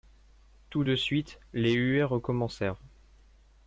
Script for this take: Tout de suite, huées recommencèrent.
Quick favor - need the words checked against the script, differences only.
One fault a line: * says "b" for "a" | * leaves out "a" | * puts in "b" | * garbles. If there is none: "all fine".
* puts in "les"